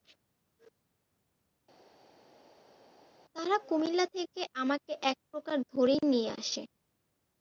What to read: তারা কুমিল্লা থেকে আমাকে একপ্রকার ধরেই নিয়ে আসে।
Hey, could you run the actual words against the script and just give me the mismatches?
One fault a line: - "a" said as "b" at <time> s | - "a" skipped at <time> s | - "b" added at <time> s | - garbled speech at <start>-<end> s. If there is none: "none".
none